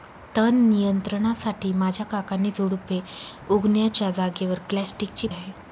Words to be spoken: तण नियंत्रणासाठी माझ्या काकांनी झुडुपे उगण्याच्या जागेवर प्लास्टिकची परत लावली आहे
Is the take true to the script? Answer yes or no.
no